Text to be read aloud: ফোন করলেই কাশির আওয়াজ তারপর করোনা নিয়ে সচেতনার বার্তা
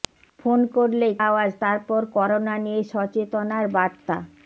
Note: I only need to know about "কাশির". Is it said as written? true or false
false